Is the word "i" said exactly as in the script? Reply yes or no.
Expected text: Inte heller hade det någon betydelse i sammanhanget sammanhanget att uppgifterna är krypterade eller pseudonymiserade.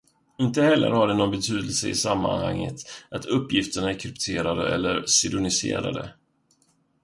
yes